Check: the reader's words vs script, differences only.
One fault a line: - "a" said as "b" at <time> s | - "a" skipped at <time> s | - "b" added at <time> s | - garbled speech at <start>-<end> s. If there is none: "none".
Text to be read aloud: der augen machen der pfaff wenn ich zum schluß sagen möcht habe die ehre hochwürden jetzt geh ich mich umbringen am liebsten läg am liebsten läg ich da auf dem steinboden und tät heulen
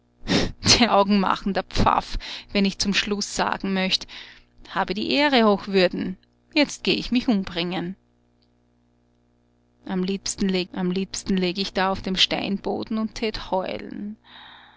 none